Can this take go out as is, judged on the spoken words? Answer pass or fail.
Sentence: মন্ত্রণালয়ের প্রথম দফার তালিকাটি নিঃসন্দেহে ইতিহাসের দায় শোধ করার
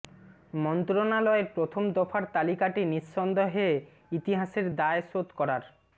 pass